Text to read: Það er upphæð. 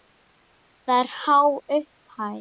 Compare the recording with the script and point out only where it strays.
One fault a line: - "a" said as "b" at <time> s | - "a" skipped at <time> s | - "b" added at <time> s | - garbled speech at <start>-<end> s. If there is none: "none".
- "há" added at 1.2 s